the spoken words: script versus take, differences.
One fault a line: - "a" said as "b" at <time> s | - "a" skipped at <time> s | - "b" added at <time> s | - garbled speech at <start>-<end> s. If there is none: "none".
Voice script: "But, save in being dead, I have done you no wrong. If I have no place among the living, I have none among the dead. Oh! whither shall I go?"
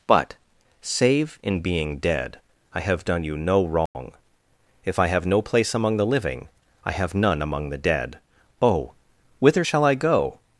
none